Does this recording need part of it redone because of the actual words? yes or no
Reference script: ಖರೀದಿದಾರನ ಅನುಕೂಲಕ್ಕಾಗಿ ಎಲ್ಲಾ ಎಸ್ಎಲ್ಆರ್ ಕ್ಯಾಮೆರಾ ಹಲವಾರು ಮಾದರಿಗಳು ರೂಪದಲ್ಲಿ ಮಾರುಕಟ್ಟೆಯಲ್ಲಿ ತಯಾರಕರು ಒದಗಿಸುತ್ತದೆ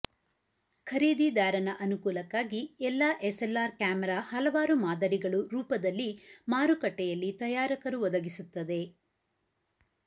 no